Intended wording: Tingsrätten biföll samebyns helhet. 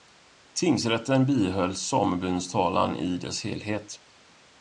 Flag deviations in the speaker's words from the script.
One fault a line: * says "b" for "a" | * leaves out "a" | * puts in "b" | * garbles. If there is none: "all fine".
* puts in "talan i dess"